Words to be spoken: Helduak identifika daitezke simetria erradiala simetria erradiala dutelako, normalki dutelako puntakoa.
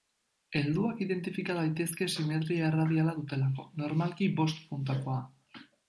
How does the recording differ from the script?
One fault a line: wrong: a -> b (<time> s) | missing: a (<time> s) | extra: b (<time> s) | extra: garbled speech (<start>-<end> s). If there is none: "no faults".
missing: simetria erradiala (3.1 s)
wrong: dutelako -> bost (4.4 s)